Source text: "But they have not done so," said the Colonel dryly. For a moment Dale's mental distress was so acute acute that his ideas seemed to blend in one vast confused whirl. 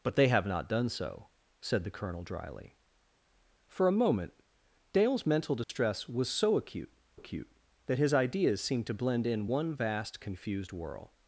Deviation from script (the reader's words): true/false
false